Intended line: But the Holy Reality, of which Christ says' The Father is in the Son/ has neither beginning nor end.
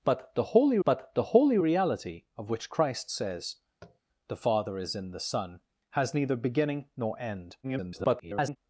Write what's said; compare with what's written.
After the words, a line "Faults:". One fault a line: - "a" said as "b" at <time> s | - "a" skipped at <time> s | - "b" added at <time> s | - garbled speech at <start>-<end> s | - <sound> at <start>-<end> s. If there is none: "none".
But the Holy but the Holy Reality, of which Christ says' The Father is in the Son/ has neither beginning nor end. [garbled]
Faults:
- "but the Holy" added at 0.8 s
- tap at 3.8-4.0 s
- garbled speech at 7.6-8.6 s